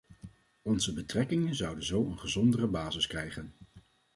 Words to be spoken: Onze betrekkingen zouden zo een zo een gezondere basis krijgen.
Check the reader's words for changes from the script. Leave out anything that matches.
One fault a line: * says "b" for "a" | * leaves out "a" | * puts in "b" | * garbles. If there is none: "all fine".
* leaves out "zo een"